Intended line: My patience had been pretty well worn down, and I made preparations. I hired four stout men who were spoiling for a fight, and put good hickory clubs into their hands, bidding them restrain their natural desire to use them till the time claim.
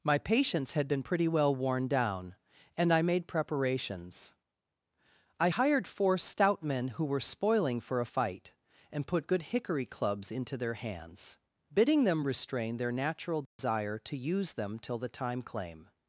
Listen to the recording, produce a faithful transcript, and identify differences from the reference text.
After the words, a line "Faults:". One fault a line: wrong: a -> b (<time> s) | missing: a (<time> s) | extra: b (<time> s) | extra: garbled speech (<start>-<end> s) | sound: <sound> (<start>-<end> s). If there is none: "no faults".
My patience had been pretty well worn down, and I made preparations. I hired four stout men who were spoiling for a fight, and put good hickory clubs into their hands, bidding them restrain their natural desire to use them till the time claim.
Faults:
sound: dropout (13.5-13.6 s)